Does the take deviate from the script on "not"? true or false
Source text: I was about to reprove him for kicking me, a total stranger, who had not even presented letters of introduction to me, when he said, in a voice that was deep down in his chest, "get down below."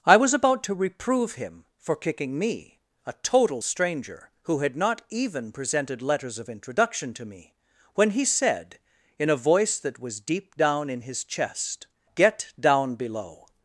false